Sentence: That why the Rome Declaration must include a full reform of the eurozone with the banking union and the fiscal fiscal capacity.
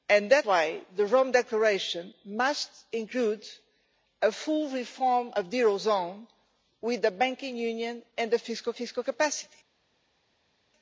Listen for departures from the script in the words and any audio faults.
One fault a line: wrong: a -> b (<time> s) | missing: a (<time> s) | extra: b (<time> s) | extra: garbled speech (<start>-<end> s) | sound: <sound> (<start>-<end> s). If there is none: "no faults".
no faults